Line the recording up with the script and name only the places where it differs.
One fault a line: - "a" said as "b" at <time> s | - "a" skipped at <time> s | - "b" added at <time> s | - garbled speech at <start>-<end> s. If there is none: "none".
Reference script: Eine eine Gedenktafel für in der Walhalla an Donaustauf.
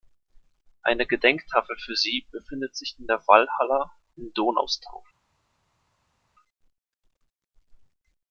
- "eine" skipped at 1.1 s
- "sie befindet sich" added at 1.9 s
- "an" said as "in" at 4.2 s